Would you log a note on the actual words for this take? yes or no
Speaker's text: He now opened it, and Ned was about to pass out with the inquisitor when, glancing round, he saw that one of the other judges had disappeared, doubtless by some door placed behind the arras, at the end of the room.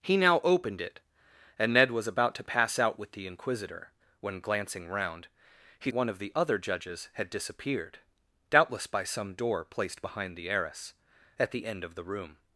yes